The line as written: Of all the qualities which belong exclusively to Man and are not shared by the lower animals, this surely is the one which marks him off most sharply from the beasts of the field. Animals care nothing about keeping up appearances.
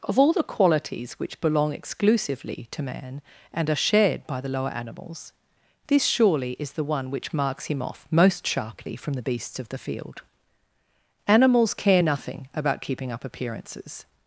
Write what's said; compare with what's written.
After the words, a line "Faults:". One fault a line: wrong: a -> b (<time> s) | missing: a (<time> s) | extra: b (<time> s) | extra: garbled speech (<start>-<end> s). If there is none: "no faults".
Of all the qualities which belong exclusively to Man and are shared by the lower animals, this surely is the one which marks him off most sharply from the beasts of the field. Animals care nothing about keeping up appearances.
Faults:
missing: not (3.8 s)